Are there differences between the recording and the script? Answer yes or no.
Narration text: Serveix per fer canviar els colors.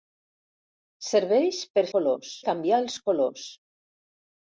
yes